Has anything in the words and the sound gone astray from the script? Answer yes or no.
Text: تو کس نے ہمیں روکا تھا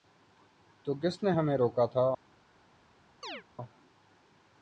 yes